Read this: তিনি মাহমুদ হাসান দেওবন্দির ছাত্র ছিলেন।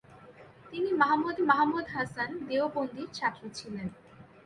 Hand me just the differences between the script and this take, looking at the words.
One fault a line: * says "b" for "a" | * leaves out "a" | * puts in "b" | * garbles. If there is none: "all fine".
* puts in "মাহমুদ"